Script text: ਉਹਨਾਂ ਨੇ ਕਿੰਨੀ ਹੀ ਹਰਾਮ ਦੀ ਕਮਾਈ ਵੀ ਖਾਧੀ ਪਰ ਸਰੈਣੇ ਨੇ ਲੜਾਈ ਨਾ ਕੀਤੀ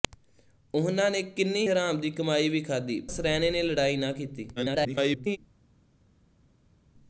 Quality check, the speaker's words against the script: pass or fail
fail